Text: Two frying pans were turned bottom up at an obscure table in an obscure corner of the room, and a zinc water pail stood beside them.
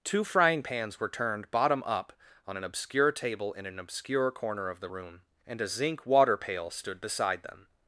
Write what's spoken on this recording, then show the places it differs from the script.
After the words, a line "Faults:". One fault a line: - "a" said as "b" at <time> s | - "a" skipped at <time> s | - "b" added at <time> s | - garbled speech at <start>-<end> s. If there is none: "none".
Two frying pans were turned bottom up on an obscure table in an obscure corner of the room, and a zinc water pail stood beside them.
Faults:
- "at" said as "on" at 2.5 s